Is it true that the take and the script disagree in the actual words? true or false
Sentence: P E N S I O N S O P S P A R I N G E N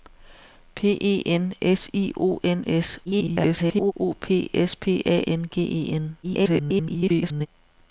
true